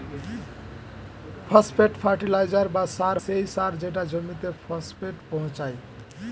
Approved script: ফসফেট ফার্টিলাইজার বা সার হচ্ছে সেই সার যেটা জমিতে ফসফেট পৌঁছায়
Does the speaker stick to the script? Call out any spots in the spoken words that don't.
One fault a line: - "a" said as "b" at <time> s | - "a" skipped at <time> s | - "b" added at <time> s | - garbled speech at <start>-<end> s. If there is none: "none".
- "হচ্ছে" skipped at 3.2 s